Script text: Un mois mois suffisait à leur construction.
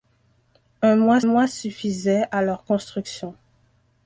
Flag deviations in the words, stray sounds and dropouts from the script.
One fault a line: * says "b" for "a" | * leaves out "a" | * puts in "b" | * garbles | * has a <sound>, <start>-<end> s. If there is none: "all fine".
all fine